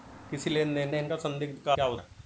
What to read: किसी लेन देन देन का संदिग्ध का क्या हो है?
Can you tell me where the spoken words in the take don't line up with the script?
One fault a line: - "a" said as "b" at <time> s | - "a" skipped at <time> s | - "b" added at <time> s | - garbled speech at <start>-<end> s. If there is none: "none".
none